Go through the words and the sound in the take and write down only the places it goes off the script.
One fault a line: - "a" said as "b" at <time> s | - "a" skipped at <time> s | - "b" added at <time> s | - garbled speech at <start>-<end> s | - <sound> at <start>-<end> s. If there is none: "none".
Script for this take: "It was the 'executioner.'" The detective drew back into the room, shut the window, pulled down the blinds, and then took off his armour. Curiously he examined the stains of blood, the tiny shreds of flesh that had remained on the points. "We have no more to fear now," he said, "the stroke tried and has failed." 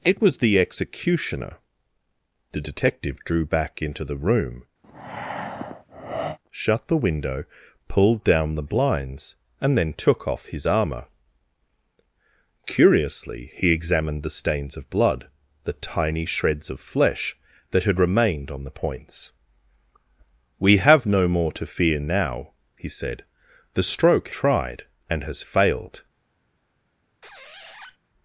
- breath at 4.8-6.4 s
- squeak at 27.2-28.0 s